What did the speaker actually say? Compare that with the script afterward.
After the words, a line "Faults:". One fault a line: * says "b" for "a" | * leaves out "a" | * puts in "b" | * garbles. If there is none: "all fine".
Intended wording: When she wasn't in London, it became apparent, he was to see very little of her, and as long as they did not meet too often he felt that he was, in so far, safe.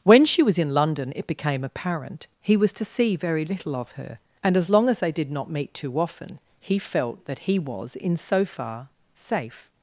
When she was in London, it became apparent, he was to see very little of her, and as long as they did not meet too often he felt that he was, in so far, safe.
Faults:
* says "was" for "wasn't"